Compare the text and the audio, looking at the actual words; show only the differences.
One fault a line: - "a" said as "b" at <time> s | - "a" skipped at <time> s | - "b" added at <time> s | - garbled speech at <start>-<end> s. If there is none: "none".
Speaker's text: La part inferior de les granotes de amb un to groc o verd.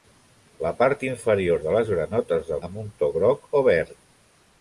none